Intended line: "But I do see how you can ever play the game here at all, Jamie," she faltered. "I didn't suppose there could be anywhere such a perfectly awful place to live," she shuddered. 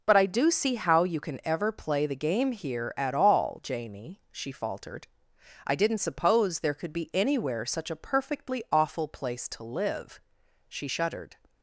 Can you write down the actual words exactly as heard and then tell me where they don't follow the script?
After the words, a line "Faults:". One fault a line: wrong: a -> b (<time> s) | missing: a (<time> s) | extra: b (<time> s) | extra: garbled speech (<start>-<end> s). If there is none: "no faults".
"But I do see how you can ever play the game here at all, Jamie," she faltered. "I didn't suppose there could be anywhere such a perfectly awful place to live," she shuddered.
Faults:
no faults